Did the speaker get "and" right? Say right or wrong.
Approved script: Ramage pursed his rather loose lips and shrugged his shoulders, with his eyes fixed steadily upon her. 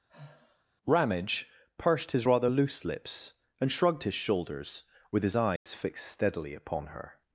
right